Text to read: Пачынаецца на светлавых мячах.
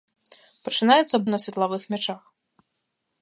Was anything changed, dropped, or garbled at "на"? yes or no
no